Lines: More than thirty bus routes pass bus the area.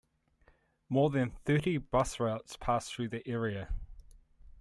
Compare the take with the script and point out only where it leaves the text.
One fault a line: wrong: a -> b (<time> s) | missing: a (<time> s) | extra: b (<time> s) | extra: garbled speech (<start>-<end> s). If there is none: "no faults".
wrong: bus -> through (2.9 s)